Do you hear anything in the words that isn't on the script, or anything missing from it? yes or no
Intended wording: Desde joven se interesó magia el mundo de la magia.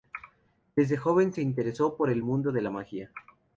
yes